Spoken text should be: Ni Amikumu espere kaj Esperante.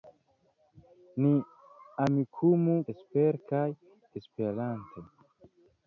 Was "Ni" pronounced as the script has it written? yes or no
yes